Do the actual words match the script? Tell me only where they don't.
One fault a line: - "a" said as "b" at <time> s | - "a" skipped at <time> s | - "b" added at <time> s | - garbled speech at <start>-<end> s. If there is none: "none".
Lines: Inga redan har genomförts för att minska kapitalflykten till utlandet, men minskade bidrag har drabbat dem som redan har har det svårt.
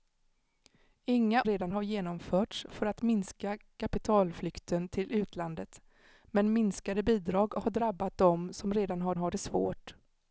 none